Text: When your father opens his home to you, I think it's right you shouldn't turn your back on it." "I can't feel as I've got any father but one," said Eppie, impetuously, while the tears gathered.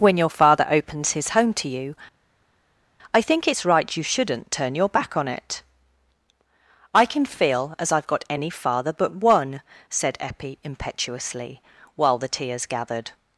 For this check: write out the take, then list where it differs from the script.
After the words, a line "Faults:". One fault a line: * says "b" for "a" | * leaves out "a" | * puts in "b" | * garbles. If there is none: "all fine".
When your father opens his home to you, I think it's right you shouldn't turn your back on it." "I can feel as I've got any father but one," said Eppie, impetuously, while the tears gathered.
Faults:
* says "can" for "can't"